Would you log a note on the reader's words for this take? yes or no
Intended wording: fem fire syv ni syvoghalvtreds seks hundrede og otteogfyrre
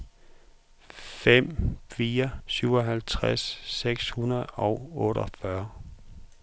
yes